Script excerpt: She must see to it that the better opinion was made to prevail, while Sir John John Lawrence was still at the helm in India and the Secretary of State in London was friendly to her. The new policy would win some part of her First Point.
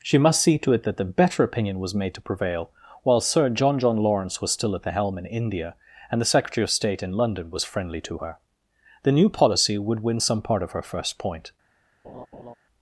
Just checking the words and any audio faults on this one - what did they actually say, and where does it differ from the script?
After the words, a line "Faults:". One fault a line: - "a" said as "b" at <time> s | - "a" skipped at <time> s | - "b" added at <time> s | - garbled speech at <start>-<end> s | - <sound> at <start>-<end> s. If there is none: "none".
She must see to it that the better opinion was made to prevail, while Sir John John Lawrence was still at the helm in India and the Secretary of State in London was friendly to her. The new policy would win some part of her First Point.
Faults:
- laugh at 12.0-12.5 s